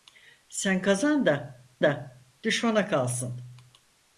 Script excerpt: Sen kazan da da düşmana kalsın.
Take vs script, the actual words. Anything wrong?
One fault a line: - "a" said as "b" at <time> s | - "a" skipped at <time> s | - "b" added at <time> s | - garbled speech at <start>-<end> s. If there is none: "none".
none